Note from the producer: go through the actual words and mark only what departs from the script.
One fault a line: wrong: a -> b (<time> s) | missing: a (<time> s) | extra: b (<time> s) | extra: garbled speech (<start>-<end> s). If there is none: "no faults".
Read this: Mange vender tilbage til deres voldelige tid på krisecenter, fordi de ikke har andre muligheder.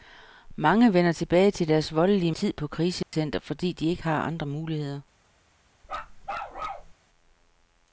no faults